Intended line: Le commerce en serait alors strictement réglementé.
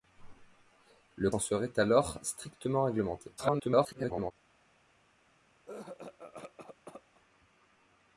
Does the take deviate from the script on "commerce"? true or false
true